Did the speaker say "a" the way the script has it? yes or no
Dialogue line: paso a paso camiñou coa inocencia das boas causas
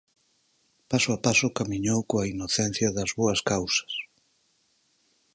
yes